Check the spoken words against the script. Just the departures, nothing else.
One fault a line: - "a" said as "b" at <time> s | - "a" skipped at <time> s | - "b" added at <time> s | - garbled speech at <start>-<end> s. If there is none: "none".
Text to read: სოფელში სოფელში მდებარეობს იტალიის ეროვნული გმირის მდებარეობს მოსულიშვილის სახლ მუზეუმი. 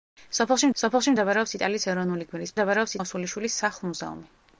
none